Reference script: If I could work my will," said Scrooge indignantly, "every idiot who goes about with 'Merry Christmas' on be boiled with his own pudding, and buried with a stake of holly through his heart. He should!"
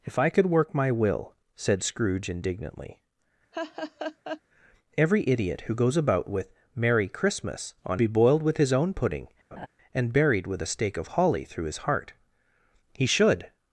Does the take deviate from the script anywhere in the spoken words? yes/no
no